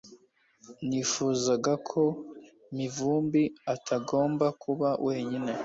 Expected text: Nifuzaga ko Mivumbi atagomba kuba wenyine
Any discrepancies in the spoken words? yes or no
no